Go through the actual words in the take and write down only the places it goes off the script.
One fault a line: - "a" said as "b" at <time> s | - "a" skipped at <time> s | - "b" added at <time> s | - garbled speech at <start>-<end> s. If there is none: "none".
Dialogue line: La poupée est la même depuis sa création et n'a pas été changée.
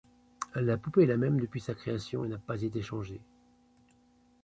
none